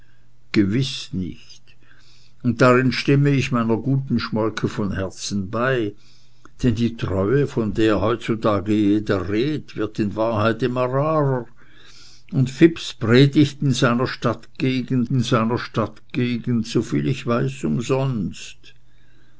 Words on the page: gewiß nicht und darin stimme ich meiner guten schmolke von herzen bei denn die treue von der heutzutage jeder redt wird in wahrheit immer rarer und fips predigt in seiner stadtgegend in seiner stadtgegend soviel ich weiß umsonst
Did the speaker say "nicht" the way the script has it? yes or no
yes